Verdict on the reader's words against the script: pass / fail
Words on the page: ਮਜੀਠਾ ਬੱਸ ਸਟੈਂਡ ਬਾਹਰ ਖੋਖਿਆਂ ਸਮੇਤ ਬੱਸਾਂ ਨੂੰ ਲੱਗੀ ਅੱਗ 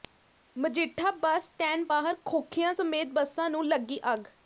pass